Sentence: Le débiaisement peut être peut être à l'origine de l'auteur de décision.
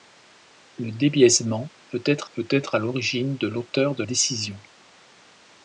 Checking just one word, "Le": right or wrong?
right